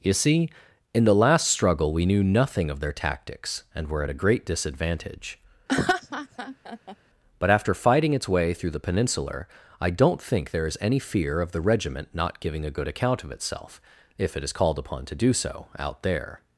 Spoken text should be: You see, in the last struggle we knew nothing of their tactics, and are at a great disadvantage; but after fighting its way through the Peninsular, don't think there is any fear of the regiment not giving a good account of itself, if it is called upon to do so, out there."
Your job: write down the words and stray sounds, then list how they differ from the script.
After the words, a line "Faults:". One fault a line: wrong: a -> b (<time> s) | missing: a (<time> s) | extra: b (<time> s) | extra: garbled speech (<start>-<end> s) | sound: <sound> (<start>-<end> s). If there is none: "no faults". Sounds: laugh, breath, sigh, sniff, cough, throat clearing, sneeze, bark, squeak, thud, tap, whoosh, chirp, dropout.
You see, in the last struggle we knew nothing of their tactics, and were at a great disadvantage; but after fighting its way through the Peninsular, I don't think there is any fear of the regiment not giving a good account of itself, if it is called upon to do so, out there."
Faults:
wrong: are -> were (3.9 s)
sound: laugh (5.7-7.0 s)
extra: I (9.8 s)